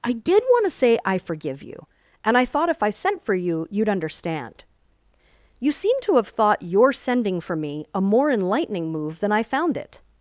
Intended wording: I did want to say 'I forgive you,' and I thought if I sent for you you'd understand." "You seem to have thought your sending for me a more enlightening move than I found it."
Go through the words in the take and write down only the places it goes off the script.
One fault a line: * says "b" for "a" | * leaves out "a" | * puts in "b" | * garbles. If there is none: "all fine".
all fine